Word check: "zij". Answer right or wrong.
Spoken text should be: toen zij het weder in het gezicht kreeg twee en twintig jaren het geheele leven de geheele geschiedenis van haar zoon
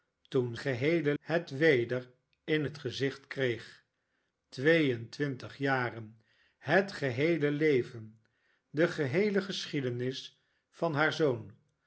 wrong